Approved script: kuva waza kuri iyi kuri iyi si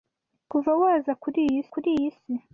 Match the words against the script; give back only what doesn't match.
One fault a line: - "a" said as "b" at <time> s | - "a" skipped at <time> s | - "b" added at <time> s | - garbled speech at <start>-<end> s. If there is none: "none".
none